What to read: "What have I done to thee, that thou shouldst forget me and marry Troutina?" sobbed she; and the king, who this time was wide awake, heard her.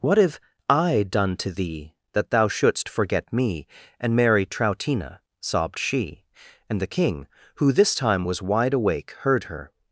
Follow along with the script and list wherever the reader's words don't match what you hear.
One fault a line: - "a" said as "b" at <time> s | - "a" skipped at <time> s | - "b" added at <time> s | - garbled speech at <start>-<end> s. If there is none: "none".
none